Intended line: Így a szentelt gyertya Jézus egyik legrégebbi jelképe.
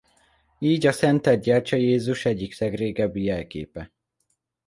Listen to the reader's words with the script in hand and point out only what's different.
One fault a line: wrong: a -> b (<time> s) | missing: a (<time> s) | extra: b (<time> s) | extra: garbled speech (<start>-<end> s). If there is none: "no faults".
no faults